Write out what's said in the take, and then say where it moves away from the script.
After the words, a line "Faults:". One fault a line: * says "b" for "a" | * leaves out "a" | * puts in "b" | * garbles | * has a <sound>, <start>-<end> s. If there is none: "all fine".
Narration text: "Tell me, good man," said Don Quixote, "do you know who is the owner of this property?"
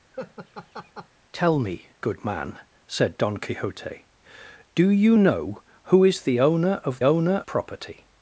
"Tell me, good man," said Don Quixote, "do you know who is the owner of owner property?"
Faults:
* has a laugh, 0.1-1.1 s
* says "owner" for "this"